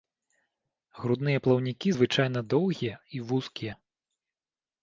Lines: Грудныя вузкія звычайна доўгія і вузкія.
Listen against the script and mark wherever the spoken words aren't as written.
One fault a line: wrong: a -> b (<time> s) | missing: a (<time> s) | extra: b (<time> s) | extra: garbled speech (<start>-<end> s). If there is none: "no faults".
wrong: вузкія -> плаўнікі (1.5 s)